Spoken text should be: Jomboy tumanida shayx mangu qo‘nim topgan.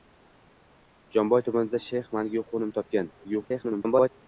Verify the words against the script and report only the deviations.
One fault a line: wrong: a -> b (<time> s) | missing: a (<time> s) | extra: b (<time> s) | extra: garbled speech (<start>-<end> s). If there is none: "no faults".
extra: garbled speech (3.2-4.1 s)